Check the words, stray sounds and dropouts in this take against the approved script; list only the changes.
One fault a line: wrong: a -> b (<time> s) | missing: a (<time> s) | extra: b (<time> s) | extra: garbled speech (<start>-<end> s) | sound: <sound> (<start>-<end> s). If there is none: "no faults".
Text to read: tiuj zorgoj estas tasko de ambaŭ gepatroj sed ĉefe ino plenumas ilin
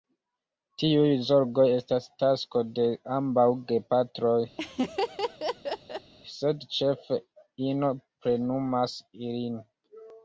sound: laugh (4.6-6.1 s)